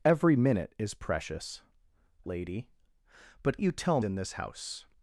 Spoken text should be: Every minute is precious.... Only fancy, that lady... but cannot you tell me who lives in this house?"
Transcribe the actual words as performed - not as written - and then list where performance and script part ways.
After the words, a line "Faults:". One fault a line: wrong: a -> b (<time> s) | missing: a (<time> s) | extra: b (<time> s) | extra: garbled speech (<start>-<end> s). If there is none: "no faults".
Every minute is precious.... Lady... but you tell in this house?"
Faults:
missing: Only fancy that (1.6 s)
missing: cannot (3.6 s)
missing: me who lives (4.0 s)